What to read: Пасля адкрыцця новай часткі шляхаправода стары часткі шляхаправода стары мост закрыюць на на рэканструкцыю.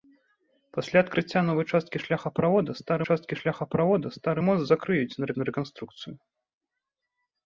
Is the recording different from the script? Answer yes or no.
no